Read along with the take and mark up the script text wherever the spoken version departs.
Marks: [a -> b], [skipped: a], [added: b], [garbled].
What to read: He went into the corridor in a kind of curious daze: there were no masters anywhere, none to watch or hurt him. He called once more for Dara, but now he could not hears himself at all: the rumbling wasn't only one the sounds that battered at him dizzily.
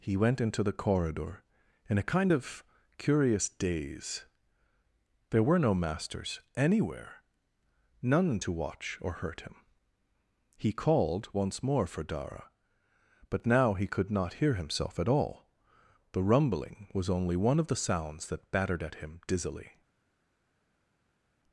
He went into the corridor in a kind of curious daze: there were no masters anywhere, none to watch or hurt him. He called once more for Dara, but now he could not [hears -> hear] himself at all: the rumbling [wasn't -> was] only one [added: of] the sounds that battered at him dizzily.